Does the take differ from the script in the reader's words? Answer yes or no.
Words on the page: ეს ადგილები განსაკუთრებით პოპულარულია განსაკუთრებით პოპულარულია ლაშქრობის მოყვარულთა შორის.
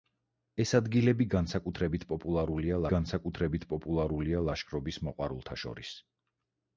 no